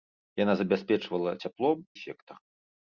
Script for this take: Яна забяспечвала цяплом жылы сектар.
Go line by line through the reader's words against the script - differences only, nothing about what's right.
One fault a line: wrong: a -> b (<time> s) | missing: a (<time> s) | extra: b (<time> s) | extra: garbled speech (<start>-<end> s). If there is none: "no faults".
missing: жылы (1.8 s)